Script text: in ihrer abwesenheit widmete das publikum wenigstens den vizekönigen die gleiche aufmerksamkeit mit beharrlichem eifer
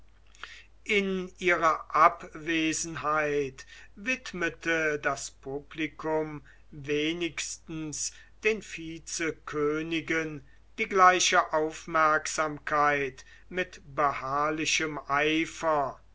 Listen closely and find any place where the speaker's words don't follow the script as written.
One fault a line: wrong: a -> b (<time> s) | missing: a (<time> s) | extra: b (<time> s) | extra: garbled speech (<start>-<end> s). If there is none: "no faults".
no faults